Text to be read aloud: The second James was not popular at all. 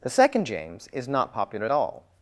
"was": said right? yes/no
no